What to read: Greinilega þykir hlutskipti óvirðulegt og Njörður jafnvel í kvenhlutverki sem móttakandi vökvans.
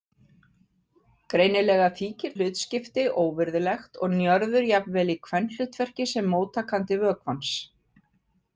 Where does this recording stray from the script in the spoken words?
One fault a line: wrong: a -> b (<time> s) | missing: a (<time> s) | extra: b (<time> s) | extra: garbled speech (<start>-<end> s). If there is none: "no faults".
no faults